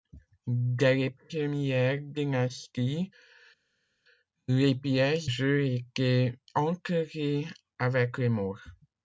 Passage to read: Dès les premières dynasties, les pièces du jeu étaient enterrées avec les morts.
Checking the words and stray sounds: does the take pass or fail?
fail